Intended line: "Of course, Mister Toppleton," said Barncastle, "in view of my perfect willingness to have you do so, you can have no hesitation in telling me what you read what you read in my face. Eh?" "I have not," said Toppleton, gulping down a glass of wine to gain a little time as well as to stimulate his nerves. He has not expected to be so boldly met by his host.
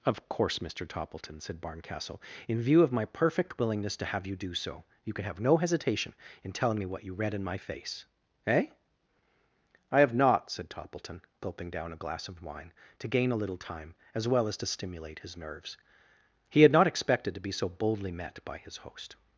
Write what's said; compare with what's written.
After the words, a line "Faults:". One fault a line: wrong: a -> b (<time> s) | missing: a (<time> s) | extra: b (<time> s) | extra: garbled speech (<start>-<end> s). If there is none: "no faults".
"Of course, Mister Toppleton," said Barncastle, "in view of my perfect willingness to have you do so, you can have no hesitation in telling me what you read in my face. Eh?" "I have not," said Toppleton, gulping down a glass of wine to gain a little time as well as to stimulate his nerves. He had not expected to be so boldly met by his host.
Faults:
missing: what you read (7.3 s)
wrong: has -> had (16.6 s)